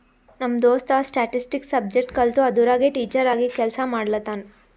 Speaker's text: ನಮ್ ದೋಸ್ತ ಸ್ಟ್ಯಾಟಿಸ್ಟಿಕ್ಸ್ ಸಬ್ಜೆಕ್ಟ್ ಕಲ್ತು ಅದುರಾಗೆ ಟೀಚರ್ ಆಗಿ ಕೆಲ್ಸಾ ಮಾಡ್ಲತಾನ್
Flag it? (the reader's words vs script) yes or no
no